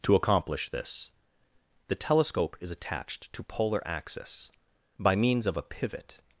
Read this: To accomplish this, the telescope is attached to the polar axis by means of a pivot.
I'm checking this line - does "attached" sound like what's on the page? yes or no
yes